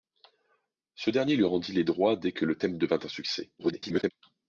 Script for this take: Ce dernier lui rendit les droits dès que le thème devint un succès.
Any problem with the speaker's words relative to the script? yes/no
yes